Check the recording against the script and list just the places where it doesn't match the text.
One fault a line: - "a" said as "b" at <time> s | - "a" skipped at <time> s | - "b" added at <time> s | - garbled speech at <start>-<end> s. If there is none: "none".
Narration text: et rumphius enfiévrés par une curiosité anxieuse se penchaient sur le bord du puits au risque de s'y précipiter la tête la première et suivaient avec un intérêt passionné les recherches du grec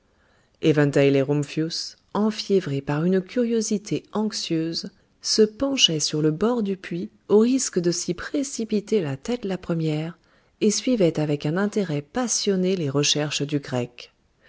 none